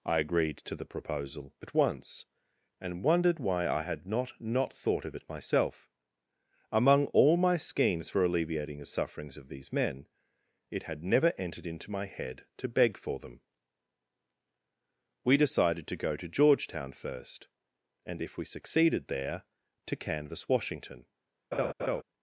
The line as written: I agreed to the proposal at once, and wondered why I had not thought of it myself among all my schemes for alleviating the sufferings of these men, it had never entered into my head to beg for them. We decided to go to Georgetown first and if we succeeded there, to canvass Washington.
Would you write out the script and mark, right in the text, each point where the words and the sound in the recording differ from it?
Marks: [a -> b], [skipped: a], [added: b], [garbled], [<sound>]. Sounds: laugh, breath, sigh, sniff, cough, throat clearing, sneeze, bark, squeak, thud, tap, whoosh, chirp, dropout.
I agreed to the proposal at once, and wondered why I had not [added: not] thought of it myself among all my schemes for alleviating the sufferings of these men, it had never entered into my head to beg for them. We decided to go to Georgetown first and if we succeeded there, to canvass Washington. [laugh]